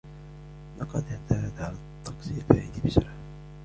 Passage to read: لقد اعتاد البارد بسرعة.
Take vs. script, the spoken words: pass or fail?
fail